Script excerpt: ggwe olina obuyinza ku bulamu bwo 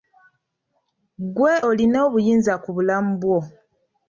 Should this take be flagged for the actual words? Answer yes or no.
no